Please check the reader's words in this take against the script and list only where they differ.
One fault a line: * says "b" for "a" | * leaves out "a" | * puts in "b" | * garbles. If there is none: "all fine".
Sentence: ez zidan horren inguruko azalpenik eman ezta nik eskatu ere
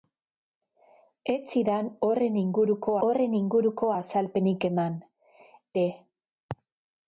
* puts in "horren inguruko"
* leaves out "ezta nik eskatu"